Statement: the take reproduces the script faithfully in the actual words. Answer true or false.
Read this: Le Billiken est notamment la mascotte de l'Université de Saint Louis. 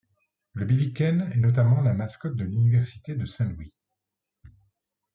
true